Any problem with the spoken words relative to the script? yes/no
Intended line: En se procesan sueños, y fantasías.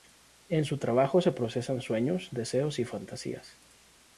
yes